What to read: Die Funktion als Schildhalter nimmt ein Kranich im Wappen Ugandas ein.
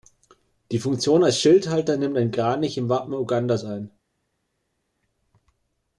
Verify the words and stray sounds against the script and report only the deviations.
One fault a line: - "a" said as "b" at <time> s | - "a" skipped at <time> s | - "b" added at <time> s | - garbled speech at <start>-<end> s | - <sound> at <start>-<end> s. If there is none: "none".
none